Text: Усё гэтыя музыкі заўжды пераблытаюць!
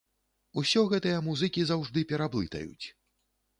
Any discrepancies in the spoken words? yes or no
no